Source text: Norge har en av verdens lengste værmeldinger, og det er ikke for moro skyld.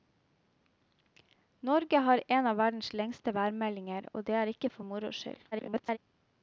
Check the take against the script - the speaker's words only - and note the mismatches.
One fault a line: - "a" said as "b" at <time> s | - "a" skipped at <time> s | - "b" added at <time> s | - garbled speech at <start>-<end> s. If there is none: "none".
- garbled speech at 5.5-6.0 s